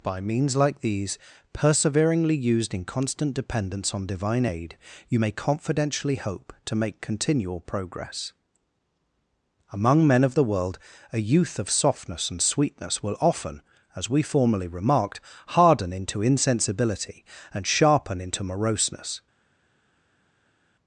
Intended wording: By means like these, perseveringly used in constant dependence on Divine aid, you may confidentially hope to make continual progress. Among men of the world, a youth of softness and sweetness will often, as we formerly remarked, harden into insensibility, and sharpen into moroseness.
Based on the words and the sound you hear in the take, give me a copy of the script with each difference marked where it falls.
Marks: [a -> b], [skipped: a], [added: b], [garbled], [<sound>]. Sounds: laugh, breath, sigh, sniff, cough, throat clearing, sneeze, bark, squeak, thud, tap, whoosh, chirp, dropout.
By means like these, perseveringly used in constant dependence on Divine aid, you may confidentially hope to make continual progress. Among men of the world, a youth of softness and sweetness will often, as we formerly remarked, harden into insensibility, and sharpen into moroseness.